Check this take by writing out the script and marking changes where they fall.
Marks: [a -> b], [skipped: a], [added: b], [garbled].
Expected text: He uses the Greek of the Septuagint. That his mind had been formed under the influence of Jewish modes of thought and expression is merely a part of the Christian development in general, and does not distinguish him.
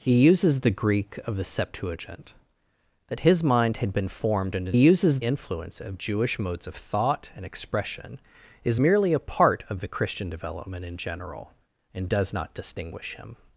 He uses the Greek of the Septuagint. That his mind had been formed under [the -> uses] influence of Jewish modes of thought and expression is merely a part of the Christian development in general, and does not distinguish him.